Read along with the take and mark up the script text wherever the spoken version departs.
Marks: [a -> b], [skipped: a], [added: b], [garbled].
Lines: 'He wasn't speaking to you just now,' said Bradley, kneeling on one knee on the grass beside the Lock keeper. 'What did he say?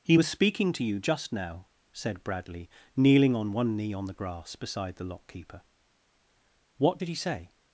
'He [wasn't -> was] speaking to you just now,' said Bradley, kneeling on one knee on the grass beside the Lock keeper. 'What did he say?